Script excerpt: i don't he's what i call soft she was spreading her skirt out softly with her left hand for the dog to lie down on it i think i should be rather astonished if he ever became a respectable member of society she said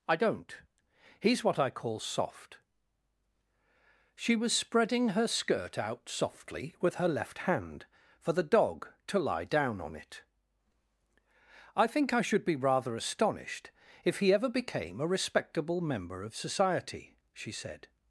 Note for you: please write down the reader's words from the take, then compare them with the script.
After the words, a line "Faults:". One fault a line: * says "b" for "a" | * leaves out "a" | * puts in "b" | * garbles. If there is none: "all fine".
i don't he's what i call soft she was spreading her skirt out softly with her left hand for the dog to lie down on it i think i should be rather astonished if he ever became a respectable member of society she said
Faults:
all fine